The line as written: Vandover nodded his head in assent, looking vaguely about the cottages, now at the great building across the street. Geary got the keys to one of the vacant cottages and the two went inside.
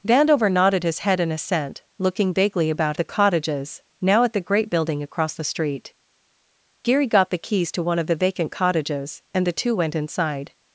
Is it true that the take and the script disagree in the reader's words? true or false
false